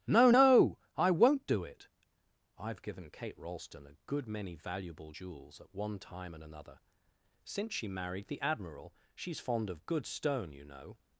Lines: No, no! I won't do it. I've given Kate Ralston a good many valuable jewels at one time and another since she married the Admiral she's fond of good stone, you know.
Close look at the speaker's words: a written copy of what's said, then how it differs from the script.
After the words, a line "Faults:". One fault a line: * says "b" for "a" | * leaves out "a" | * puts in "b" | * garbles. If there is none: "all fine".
No, no! I won't do it. I've given Kate Ralston a good many valuable jewels at one time and another since she married the Admiral she's fond of good stone, you know.
Faults:
all fine